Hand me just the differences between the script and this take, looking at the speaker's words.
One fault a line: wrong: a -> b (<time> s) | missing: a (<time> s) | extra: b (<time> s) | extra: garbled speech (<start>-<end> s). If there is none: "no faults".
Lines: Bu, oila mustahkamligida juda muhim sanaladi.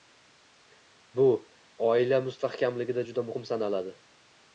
no faults